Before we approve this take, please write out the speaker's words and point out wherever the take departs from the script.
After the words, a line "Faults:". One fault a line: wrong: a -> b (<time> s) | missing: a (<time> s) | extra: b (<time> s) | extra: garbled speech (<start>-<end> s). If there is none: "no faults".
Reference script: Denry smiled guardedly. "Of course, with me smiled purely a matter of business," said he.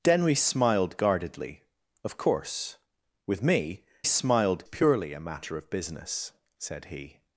Denry smiled guardedly. "Of course, with me smiled purely a matter of business," said he.
Faults:
no faults